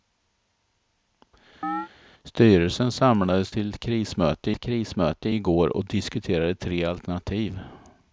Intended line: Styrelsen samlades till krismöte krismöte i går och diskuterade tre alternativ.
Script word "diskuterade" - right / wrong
right